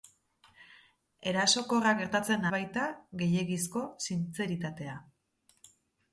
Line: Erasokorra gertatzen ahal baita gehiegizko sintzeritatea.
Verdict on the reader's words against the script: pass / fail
fail